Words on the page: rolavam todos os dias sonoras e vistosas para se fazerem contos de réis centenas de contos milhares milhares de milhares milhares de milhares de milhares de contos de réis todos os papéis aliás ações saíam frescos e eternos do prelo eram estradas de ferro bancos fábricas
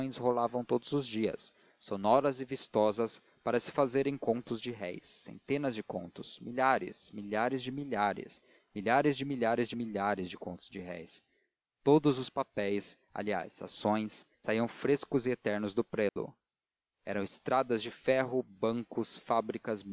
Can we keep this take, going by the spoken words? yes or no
yes